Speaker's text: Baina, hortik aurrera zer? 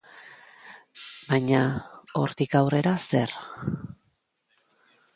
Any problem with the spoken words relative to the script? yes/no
no